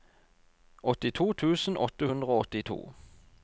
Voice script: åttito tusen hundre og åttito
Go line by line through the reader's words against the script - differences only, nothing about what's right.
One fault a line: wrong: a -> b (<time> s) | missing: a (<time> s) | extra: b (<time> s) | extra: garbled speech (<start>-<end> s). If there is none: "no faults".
extra: åtte (1.9 s)